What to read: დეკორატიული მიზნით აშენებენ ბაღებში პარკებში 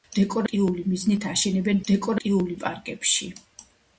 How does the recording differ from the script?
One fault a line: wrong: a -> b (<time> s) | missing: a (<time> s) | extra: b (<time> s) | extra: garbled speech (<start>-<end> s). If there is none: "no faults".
wrong: ბაღებში -> დეკორატიული (1.9 s)